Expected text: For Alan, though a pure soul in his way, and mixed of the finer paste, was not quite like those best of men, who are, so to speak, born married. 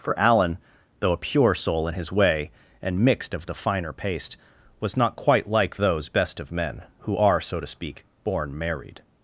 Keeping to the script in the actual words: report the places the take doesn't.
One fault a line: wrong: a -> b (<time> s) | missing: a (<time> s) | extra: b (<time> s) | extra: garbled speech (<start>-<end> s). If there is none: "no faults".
no faults